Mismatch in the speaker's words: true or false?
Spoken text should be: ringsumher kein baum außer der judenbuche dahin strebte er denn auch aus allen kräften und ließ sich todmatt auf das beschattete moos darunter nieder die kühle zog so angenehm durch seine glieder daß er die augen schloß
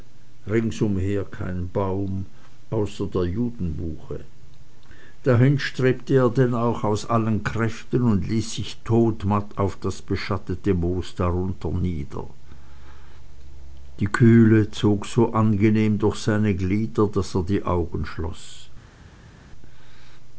false